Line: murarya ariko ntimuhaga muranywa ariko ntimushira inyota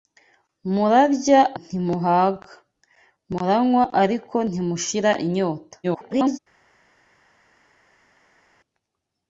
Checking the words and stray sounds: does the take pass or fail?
fail